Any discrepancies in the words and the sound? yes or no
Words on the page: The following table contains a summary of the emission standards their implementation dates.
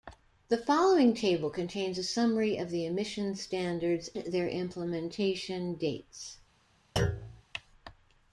yes